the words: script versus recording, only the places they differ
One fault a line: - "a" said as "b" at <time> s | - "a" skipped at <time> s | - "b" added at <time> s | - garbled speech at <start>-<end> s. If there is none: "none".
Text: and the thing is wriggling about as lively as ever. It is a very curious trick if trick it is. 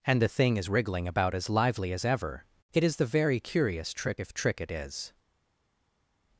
- "a" said as "the" at 3.0 s